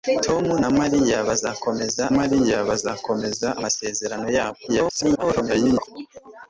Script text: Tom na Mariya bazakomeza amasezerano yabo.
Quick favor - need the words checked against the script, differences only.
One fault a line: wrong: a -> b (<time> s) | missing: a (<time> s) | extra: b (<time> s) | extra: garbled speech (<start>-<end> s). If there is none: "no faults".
extra: Mariya bazakomeza (2.2 s)
extra: garbled speech (4.7-5.9 s)